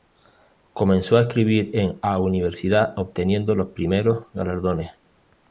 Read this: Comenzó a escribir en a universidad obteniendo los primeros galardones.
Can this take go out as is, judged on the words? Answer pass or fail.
pass